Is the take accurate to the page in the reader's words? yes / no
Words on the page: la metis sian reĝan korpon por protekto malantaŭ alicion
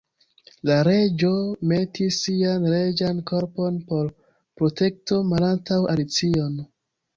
no